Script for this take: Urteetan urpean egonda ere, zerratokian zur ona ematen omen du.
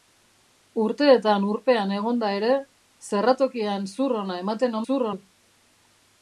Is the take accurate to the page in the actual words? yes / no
no